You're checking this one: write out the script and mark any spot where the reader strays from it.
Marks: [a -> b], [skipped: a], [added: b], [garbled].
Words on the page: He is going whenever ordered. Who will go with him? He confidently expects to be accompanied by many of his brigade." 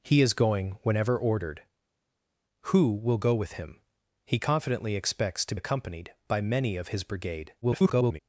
He is going whenever ordered. Who will go with him? He confidently expects to [skipped: be] accompanied by many of his brigade." [garbled]